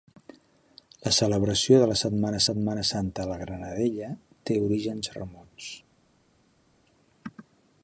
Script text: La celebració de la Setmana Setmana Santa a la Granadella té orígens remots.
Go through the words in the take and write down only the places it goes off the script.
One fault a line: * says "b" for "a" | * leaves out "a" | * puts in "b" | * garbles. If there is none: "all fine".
all fine